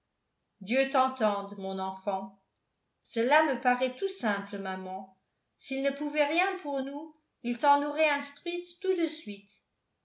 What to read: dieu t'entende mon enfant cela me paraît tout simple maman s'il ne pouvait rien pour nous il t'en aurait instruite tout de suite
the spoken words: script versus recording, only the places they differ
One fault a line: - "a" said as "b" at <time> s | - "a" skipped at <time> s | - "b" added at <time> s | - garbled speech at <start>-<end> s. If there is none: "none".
none